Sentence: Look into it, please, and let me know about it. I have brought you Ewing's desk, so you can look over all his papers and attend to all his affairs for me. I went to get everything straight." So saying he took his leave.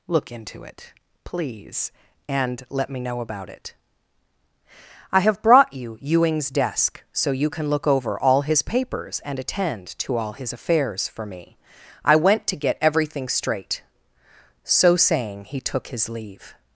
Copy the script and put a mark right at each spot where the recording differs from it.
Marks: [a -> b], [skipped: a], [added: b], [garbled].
Look into it, please, and let me know about it. I have brought you Ewing's desk, so you can look over all his papers and attend to all his affairs for me. I went to get everything straight." So saying he took his leave.